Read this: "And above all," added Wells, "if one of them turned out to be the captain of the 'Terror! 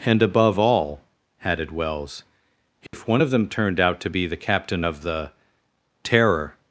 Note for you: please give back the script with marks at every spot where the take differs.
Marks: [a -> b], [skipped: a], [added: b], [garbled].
"And above all," added Wells, "if one of them turned out to be the captain of the 'Terror!